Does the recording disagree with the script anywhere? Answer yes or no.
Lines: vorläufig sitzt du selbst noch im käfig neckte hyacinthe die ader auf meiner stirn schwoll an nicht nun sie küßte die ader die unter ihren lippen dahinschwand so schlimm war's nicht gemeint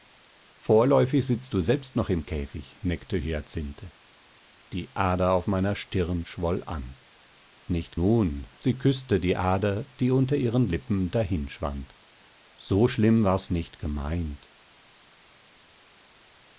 no